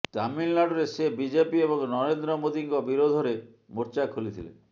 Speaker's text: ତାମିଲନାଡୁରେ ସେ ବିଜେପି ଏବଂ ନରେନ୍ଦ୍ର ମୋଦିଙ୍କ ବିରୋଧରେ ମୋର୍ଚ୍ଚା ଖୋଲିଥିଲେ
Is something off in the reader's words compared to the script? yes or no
no